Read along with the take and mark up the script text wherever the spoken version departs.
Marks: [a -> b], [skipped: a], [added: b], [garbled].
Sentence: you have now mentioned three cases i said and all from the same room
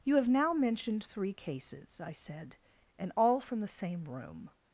you have now mentioned three cases i said and all from the same room